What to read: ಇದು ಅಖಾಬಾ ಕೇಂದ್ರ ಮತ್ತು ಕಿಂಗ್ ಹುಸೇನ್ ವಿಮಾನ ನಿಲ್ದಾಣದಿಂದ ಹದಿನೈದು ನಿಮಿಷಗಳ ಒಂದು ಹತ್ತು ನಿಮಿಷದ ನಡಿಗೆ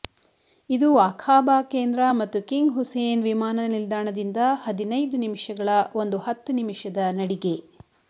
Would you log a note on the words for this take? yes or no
no